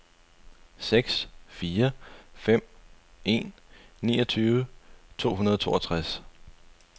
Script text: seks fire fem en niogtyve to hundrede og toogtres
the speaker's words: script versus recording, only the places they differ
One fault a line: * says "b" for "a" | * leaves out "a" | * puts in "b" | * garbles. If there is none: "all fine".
all fine